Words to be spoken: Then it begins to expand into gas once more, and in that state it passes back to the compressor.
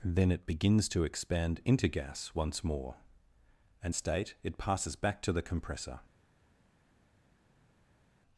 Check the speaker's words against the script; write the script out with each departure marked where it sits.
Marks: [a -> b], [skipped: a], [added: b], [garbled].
Then it begins to expand into gas once more, and [skipped: in that] state it passes back to the compressor.